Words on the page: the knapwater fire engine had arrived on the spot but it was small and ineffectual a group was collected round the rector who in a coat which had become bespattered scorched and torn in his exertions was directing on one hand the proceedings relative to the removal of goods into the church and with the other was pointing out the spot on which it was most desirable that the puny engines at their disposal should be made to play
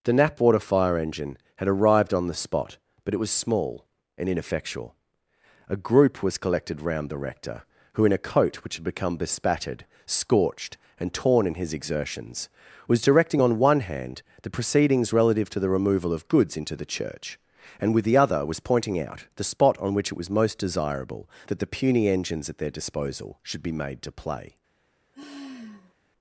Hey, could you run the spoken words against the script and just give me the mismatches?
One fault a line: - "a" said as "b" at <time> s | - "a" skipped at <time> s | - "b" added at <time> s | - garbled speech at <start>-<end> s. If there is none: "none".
none